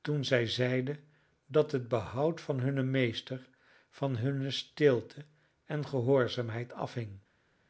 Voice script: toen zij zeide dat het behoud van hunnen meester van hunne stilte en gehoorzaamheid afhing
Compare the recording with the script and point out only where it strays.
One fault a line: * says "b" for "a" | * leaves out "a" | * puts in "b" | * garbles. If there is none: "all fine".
all fine